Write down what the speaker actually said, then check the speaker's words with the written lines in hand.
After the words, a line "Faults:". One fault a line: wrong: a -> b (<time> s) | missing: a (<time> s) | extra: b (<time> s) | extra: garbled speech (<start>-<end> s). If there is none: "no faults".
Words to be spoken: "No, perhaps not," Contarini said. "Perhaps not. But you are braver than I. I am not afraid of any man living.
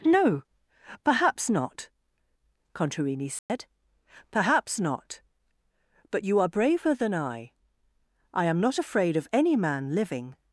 "No, perhaps not," Contarini said. "Perhaps not. But you are braver than I. I am not afraid of any man living.
Faults:
no faults